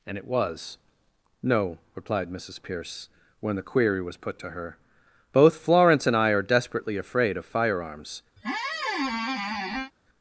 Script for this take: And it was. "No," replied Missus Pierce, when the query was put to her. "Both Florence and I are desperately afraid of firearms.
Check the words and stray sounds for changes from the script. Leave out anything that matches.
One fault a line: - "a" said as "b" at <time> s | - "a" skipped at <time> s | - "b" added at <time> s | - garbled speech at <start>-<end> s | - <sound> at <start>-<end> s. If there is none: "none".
- squeak at 8.4-9.9 s